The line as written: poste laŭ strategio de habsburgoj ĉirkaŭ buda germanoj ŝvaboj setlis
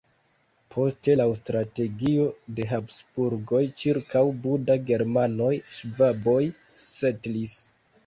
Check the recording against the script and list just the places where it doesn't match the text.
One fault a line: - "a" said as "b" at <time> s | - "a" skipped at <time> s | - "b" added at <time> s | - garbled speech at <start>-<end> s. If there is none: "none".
none